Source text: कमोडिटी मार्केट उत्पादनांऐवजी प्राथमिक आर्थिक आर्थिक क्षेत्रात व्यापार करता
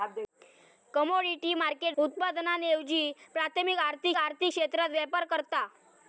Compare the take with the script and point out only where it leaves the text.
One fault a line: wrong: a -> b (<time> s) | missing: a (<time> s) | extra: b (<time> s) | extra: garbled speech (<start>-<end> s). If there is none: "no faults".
no faults